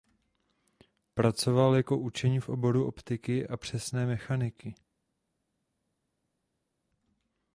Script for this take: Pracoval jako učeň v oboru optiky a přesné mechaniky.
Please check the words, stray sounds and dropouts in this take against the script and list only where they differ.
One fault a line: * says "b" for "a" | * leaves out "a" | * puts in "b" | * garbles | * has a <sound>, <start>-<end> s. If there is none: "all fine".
all fine